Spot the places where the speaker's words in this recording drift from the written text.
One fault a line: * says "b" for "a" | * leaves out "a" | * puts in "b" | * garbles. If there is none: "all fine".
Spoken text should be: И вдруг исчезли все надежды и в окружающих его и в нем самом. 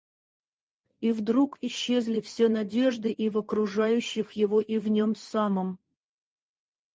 all fine